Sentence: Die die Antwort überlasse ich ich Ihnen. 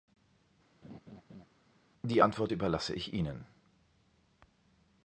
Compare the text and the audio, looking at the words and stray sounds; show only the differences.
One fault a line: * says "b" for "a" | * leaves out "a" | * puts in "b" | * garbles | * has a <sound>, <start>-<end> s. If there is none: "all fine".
* has a laugh, 0.8-1.5 s
* leaves out "die"
* leaves out "ich"